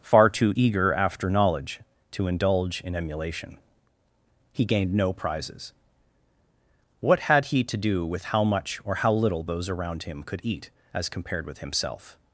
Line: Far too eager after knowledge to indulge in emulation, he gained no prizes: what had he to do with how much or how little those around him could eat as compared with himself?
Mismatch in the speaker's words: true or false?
false